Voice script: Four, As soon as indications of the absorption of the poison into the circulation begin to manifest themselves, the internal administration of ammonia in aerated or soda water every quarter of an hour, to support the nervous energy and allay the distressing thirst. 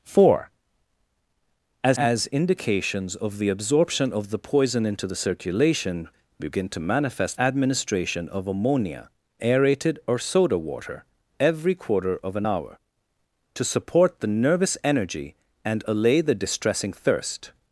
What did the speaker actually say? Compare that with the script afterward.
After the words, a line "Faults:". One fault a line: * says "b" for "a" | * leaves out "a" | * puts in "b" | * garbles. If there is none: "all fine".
Four, As as indications of the absorption of the poison into the circulation begin to manifest administration of ammonia aerated or soda water every quarter of an hour, to support the nervous energy and allay the distressing thirst.
Faults:
* leaves out "soon"
* leaves out "themselves the internal"
* leaves out "in"